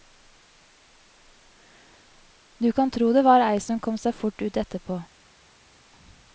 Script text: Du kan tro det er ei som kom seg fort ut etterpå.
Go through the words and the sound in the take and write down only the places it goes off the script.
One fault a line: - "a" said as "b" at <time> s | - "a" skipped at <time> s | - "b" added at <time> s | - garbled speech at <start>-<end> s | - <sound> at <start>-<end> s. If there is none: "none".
- "er" said as "var" at 3.2 s